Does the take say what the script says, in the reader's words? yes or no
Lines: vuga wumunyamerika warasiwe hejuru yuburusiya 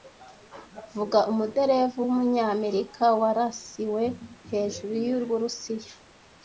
no